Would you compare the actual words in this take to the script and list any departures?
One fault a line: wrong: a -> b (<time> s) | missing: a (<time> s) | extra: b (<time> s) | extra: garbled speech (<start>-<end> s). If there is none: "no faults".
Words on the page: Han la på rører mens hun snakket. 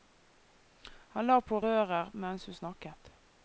no faults